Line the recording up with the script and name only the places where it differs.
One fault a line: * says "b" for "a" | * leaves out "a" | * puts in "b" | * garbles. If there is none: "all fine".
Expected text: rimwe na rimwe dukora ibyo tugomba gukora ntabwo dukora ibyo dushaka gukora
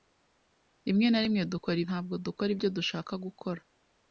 * leaves out "ibyo tugomba gukora"